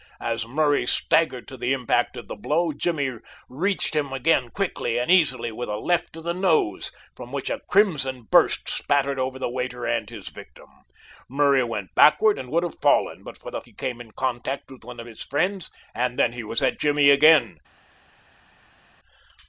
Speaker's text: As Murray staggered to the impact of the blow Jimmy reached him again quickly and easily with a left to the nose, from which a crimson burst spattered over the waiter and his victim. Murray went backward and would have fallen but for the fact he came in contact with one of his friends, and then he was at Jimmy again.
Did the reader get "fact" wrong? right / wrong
wrong